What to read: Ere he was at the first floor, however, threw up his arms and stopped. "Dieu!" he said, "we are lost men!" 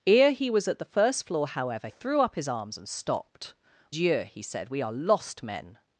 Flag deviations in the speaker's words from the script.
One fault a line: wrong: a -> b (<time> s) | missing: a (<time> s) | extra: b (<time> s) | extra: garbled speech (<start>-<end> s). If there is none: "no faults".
no faults